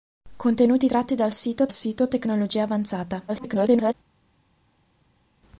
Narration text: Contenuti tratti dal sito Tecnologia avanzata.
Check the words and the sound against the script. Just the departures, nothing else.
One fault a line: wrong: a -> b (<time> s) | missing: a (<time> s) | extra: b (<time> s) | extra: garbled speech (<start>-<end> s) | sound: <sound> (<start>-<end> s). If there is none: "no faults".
extra: sito (1.7 s)
extra: garbled speech (3.3-3.9 s)